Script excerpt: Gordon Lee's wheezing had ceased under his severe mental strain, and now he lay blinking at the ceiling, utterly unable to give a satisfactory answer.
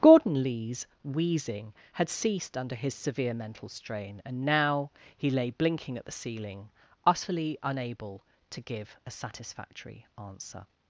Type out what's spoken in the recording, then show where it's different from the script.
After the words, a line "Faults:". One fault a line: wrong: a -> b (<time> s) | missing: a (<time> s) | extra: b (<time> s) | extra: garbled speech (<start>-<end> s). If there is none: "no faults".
Gordon Lee's wheezing had ceased under his severe mental strain, and now he lay blinking at the ceiling, utterly unable to give a satisfactory answer.
Faults:
no faults